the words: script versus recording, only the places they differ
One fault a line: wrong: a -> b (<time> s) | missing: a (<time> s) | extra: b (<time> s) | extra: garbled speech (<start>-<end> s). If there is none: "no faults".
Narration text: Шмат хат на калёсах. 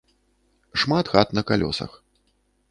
no faults